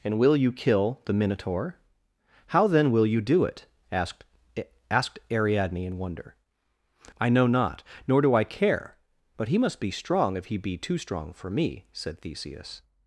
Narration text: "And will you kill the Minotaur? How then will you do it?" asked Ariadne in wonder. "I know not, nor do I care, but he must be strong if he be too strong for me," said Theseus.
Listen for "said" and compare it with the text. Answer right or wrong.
right